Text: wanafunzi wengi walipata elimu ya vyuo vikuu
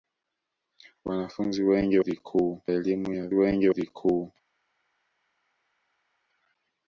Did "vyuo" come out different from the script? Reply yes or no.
yes